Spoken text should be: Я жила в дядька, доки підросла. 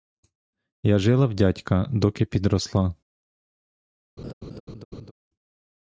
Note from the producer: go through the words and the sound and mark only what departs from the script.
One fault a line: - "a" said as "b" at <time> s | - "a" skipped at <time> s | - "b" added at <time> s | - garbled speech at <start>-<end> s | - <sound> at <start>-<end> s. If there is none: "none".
- laugh at 4.2-5.1 s